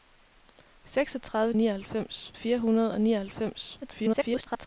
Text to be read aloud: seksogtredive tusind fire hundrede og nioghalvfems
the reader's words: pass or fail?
fail